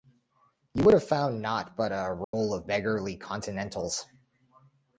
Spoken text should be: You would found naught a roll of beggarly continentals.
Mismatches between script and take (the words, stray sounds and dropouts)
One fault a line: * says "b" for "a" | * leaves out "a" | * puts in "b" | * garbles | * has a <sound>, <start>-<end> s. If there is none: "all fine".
* puts in "have"
* puts in "but"
* has a dropout, 2.2-2.3 s